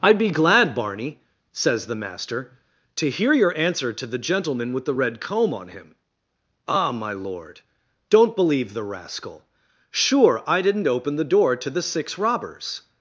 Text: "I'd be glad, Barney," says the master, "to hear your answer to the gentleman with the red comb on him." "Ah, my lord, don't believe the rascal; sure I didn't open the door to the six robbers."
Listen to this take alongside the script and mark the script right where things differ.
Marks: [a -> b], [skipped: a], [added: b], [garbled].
"I'd be glad, Barney," says the master, "to hear your answer to the gentleman with the red comb on him." "Ah, my lord, don't believe the rascal; sure I didn't open the door to the six robbers."